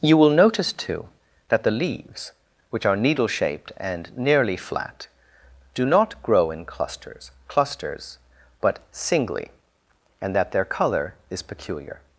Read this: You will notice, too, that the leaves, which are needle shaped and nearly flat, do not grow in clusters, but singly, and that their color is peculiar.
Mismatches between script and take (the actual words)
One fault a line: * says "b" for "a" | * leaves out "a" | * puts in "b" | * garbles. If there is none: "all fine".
* puts in "clusters"